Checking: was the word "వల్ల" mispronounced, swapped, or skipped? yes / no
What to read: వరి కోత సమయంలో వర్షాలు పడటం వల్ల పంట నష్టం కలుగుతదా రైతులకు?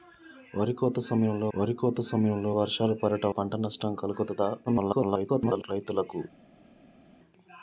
yes